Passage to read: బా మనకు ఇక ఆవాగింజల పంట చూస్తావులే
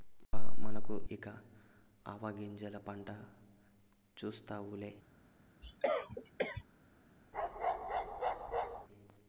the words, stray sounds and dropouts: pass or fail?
fail